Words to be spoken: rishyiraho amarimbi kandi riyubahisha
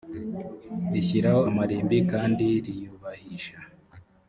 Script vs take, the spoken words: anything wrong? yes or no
no